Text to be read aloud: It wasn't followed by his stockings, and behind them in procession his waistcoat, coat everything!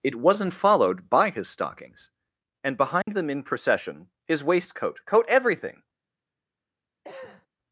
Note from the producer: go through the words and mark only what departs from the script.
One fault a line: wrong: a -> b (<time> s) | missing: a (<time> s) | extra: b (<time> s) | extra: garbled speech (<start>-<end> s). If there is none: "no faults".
no faults